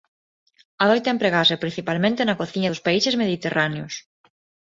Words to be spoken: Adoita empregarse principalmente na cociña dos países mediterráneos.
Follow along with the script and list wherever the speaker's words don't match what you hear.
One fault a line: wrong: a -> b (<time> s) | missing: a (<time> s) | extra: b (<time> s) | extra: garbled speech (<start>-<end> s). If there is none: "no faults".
no faults